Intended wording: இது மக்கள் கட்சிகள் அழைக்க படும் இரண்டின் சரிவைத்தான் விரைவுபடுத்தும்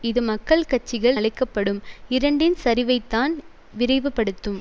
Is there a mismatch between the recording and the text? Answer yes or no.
no